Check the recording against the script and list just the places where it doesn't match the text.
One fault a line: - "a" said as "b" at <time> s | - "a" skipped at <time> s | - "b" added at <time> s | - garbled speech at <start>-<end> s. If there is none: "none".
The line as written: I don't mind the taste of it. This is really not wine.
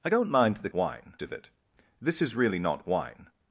- "taste" said as "wine" at 0.7 s